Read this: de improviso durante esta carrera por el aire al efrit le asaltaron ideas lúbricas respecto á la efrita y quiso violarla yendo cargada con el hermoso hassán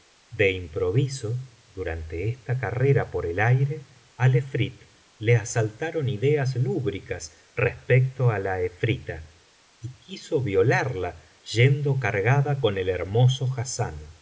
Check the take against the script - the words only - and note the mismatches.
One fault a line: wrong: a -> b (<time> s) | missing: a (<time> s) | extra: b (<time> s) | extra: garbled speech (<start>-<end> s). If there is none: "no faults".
no faults